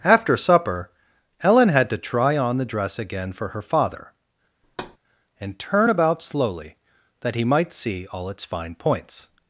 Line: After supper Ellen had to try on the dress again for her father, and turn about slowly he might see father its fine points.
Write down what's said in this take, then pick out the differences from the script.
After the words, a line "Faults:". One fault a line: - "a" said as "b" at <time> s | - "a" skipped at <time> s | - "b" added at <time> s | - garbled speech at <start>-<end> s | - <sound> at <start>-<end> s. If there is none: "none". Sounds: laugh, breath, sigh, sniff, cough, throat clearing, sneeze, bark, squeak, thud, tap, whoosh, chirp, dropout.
After supper Ellen had to try on the dress again for her father, and turn about slowly that he might see all its fine points.
Faults:
- thud at 4.6-5.0 s
- "that" added at 7.2 s
- "father" said as "all" at 8.1 s